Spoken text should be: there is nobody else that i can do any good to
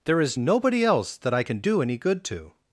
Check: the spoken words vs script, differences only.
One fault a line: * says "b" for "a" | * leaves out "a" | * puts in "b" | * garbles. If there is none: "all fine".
all fine